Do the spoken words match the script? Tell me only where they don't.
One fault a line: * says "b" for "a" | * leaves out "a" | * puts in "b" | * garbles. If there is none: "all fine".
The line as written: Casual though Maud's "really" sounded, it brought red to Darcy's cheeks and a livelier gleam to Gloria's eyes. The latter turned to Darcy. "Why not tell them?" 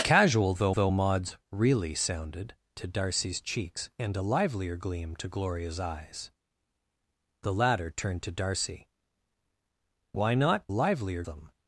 * puts in "though"
* leaves out "it brought red"
* says "livelier" for "tell"